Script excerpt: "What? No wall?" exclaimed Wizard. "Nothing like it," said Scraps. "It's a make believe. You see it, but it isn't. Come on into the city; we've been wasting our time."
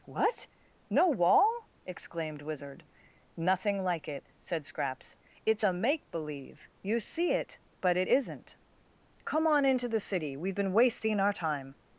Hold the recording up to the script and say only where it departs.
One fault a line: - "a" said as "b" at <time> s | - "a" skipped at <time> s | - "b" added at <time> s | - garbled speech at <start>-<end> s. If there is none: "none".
none